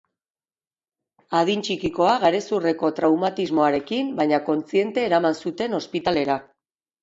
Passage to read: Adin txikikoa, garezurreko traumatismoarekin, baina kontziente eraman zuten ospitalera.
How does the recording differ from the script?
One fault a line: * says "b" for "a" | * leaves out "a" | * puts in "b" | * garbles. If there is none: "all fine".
all fine